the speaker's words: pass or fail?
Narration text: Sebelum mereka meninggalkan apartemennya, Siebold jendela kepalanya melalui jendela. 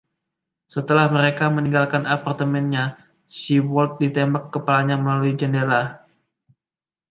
fail